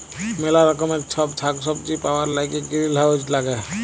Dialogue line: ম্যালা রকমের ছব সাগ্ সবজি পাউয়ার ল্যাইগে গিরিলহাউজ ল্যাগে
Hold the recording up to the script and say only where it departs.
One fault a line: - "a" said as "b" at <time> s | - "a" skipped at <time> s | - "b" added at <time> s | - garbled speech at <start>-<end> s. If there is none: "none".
none